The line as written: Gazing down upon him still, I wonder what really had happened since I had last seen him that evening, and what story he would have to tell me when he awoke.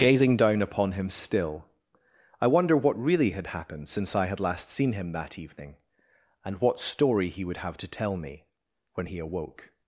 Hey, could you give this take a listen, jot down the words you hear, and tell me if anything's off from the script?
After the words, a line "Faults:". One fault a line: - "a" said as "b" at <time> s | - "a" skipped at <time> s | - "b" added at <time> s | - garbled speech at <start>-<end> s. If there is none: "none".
Gazing down upon him still, I wonder what really had happened since I had last seen him that evening, and what story he would have to tell me when he awoke.
Faults:
none